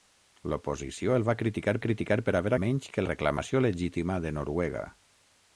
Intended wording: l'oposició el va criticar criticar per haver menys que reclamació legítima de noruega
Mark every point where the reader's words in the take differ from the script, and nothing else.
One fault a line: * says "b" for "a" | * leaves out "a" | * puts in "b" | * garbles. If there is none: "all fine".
all fine